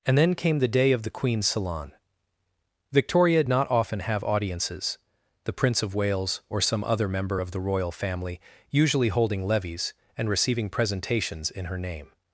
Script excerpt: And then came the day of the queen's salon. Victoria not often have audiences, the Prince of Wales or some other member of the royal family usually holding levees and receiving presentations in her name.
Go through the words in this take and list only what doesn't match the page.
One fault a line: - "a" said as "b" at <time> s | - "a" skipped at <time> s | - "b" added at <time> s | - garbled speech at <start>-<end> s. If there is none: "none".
none